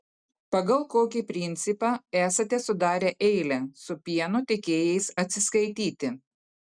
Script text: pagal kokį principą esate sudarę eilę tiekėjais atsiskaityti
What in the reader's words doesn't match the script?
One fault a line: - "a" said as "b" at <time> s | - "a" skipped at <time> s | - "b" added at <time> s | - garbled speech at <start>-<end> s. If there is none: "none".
- "su pieno" added at 3.8 s